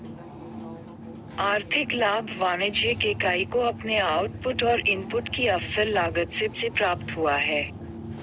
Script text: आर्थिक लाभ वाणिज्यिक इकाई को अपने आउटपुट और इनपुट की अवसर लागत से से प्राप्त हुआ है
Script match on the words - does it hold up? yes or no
yes